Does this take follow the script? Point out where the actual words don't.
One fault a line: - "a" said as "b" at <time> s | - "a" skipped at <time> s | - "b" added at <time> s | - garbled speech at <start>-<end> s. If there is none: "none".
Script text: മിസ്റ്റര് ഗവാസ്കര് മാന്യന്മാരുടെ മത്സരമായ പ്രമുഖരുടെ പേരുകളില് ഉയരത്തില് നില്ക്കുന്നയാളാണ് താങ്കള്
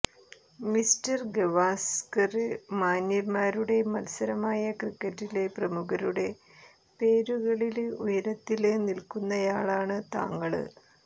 - "ക്രിക്കറ്റിലെ" added at 4.8 s